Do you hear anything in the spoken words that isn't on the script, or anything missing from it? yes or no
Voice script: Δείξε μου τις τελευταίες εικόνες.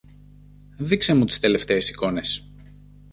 no